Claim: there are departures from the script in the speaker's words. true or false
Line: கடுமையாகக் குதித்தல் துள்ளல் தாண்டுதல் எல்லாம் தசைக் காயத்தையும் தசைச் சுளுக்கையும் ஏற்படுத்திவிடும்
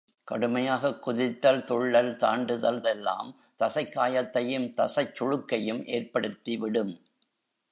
false